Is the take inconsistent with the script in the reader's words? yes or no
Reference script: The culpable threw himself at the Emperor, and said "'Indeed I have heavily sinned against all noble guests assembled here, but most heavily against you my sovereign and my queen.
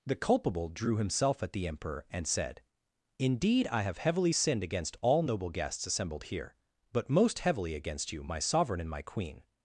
yes